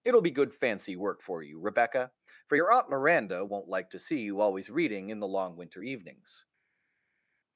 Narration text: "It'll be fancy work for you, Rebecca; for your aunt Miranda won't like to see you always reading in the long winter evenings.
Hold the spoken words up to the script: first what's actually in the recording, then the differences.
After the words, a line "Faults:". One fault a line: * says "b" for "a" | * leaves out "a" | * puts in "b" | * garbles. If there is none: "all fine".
"It'll be good fancy work for you, Rebecca; for your aunt Miranda won't like to see you always reading in the long winter evenings.
Faults:
* puts in "good"